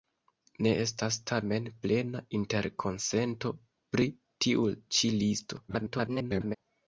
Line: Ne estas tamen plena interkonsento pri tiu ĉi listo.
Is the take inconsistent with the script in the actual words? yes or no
yes